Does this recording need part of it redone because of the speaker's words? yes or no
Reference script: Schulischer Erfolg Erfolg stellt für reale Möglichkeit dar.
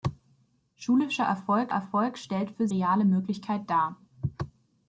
no